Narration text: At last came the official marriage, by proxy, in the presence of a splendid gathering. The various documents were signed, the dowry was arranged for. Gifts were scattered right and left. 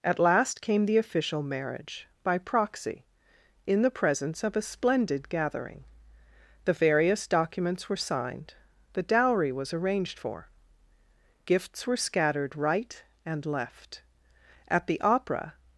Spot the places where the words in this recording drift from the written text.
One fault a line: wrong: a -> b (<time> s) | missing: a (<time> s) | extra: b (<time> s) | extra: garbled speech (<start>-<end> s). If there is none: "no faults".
extra: At the opera (14.7 s)